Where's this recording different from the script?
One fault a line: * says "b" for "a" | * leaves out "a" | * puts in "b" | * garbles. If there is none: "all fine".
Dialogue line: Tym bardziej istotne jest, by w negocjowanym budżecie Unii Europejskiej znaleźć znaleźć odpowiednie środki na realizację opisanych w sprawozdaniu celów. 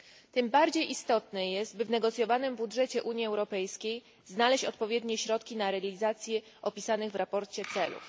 * leaves out "znaleźć"